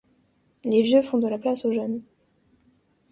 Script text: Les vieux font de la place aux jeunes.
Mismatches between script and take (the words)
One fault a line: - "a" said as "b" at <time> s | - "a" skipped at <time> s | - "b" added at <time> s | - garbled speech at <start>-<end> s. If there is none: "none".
none